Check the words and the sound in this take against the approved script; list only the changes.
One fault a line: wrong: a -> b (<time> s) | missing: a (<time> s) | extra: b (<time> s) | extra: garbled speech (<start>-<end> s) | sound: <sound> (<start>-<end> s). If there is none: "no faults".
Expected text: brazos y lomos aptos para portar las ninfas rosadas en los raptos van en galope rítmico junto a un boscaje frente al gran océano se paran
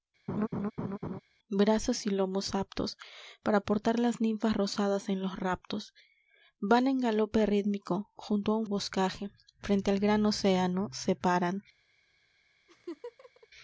sound: laugh (0.3-1.2 s)
sound: laugh (12.7-13.5 s)